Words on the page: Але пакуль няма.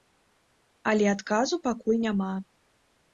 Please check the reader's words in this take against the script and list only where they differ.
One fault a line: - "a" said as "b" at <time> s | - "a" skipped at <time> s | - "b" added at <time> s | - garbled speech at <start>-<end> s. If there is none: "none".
- "адказу" added at 1.1 s